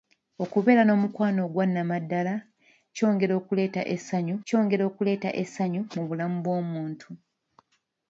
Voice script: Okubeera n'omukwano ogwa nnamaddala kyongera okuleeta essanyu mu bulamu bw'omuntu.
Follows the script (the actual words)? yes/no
no